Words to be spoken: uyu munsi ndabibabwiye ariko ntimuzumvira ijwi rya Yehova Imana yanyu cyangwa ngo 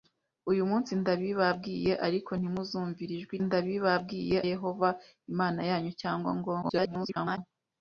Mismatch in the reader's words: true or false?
true